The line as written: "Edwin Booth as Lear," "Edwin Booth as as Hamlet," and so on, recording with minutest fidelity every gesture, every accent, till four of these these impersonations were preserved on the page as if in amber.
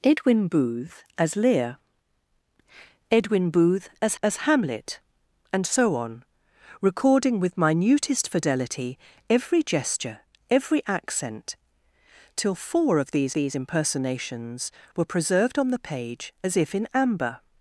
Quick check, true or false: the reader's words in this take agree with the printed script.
true